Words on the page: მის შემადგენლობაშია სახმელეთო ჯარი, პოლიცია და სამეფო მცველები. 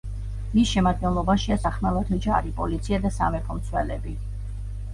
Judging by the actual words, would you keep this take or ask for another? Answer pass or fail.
pass